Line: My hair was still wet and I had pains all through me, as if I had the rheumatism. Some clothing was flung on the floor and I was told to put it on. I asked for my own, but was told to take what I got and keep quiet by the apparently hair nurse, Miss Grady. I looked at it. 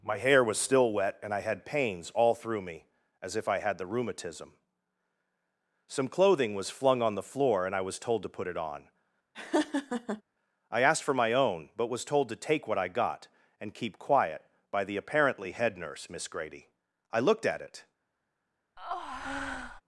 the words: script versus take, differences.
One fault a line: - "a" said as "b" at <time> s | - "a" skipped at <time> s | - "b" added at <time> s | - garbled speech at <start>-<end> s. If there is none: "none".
- "hair" said as "head" at 15.5 s